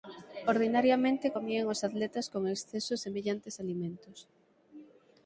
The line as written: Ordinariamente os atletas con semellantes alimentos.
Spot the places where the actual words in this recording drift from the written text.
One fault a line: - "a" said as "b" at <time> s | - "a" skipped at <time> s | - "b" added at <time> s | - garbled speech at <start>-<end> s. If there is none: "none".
- "comían" added at 1.4 s
- "exceso" added at 2.5 s